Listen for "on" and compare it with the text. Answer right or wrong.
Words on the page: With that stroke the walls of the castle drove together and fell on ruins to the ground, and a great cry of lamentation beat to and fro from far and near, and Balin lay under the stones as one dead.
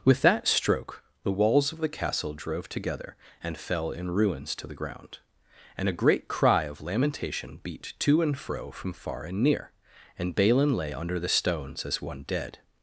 wrong